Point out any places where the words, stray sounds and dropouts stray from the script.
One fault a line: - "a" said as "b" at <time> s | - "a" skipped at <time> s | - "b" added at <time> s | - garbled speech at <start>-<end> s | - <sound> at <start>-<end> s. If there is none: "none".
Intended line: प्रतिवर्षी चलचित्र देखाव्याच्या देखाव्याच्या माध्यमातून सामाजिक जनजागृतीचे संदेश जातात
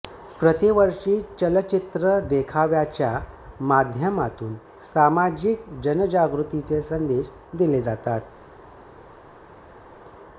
- "देखाव्याच्या" skipped at 3.1 s
- "दिले" added at 7.5 s